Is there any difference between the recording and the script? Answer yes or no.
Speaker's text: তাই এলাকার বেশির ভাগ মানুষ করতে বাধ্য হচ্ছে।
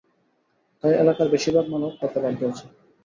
no